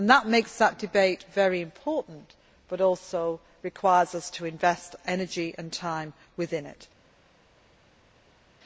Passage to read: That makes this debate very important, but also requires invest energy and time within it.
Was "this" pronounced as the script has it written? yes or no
no